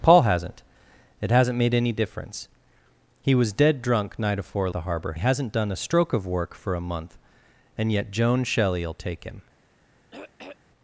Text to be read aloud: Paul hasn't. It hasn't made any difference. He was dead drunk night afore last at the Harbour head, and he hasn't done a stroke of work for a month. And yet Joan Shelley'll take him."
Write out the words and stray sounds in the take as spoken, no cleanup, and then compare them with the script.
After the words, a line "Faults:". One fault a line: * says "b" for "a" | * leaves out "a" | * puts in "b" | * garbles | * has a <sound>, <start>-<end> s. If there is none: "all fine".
Paul hasn't. It hasn't made any difference. He was dead drunk night afore the Harbour he hasn't done a stroke of work for a month. And yet Joan Shelley'll take him."
Faults:
* leaves out "last at"
* leaves out "head and"
* has a throat clearing, 10.1-10.6 s